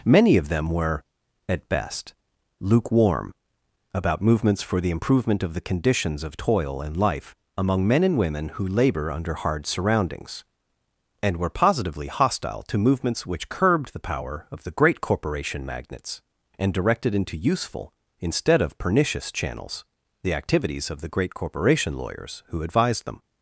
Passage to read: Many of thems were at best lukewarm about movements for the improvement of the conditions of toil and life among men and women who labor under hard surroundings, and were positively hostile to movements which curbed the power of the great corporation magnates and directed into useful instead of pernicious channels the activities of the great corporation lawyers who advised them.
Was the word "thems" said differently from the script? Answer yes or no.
yes